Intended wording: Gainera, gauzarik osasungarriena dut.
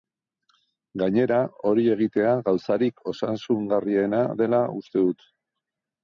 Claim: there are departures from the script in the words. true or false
true